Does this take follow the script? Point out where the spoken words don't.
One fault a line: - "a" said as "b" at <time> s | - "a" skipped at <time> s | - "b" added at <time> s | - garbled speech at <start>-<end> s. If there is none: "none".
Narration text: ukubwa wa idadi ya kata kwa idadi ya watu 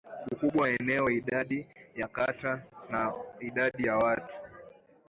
- "eneo" added at 0.7 s
- "kwa" said as "na" at 2.9 s